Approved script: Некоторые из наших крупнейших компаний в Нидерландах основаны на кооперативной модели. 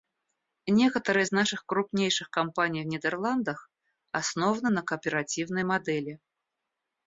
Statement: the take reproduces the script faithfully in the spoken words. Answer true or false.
true